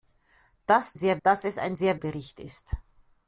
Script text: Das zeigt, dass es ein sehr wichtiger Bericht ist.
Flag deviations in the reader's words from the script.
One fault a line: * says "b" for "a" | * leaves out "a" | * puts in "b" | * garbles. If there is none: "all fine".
* says "sehr" for "zeigt"
* leaves out "wichtiger"